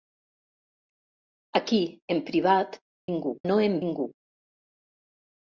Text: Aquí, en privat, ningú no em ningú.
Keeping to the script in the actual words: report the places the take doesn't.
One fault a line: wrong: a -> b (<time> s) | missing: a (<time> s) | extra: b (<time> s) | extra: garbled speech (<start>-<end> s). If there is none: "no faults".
no faults